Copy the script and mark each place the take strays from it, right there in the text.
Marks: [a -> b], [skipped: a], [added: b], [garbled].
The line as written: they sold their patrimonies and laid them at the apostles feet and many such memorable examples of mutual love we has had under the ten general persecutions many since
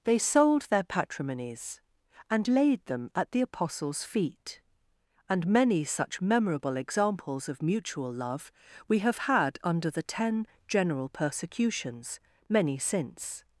they sold their patrimonies and laid them at the apostles feet and many such memorable examples of mutual love we [has -> have] had under the ten general persecutions many since